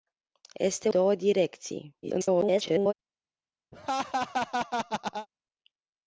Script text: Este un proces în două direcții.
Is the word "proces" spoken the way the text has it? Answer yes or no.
no